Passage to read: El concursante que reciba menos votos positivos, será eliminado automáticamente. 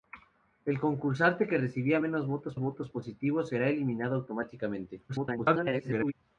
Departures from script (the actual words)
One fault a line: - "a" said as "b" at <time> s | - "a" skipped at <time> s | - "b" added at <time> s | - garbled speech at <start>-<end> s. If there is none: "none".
- "votos" added at 2.6 s
- garbled speech at 5.1-6.1 s